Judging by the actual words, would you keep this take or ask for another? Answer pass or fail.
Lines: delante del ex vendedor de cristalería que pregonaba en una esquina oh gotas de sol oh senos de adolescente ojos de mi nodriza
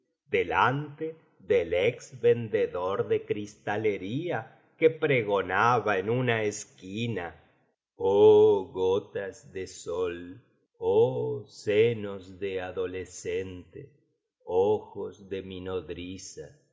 pass